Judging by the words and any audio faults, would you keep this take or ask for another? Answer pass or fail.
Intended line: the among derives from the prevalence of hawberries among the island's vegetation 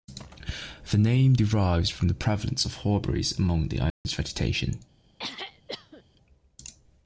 fail